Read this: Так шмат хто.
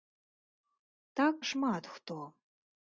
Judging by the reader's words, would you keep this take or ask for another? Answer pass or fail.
pass